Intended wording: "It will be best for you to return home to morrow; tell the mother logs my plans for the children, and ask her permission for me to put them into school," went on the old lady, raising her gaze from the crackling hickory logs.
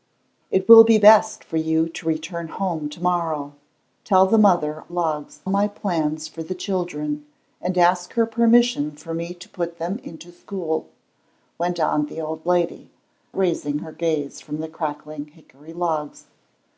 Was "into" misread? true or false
false